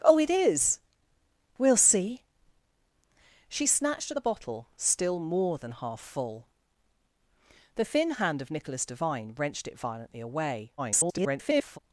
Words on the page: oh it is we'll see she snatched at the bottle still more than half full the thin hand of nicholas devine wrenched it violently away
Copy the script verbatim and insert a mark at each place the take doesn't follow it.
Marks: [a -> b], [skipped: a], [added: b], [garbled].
oh it is we'll see she snatched at the bottle still more than half full the thin hand of nicholas devine wrenched it violently away [garbled]